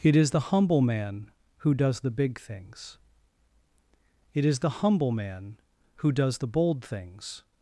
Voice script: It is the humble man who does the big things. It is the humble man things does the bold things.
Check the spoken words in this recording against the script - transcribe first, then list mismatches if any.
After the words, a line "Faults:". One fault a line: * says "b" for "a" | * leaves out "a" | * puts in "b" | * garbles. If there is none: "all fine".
It is the humble man who does the big things. It is the humble man who does the bold things.
Faults:
* says "who" for "things"